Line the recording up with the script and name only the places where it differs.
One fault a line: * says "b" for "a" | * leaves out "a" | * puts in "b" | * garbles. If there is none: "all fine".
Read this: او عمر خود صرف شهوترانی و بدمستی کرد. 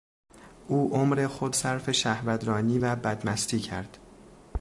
all fine